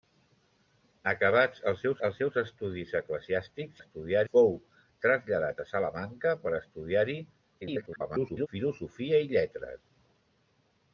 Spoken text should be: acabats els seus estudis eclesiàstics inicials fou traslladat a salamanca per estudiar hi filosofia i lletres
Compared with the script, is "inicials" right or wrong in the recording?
wrong